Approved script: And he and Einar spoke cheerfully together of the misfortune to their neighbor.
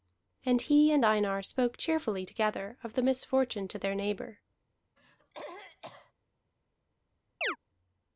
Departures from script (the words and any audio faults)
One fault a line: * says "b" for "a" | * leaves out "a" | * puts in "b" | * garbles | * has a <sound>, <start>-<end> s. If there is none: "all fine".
* has a throat clearing, 5.0-6.1 s
* has a chirp, 7.4-7.6 s